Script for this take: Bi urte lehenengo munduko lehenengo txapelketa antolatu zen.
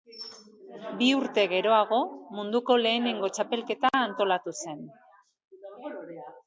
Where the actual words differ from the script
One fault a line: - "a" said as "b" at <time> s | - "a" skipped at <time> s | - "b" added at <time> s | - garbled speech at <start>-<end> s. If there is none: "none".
- "lehenengo" said as "geroago" at 1.5 s